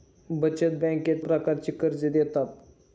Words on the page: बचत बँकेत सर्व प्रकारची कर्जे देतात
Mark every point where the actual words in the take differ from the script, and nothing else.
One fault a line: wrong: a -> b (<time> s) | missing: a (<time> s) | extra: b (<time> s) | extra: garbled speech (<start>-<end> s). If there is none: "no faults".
missing: सर्व (1.2 s)